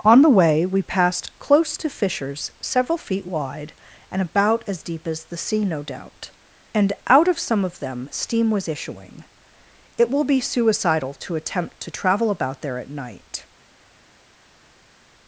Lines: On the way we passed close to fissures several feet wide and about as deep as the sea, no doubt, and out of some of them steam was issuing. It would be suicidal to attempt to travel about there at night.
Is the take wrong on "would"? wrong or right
wrong